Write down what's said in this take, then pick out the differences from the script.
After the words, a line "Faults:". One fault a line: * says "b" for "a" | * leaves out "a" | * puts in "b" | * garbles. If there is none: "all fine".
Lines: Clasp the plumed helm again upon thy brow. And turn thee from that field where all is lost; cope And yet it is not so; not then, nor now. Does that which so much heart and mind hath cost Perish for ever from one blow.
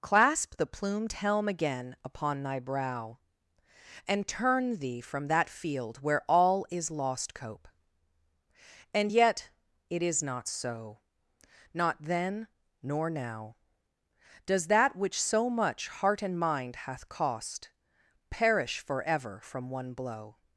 Clasp the plumed helm again upon thy brow. And turn thee from that field where all is lost; cope And yet it is not so; not then, nor now. Does that which so much heart and mind hath cost Perish for ever from one blow.
Faults:
all fine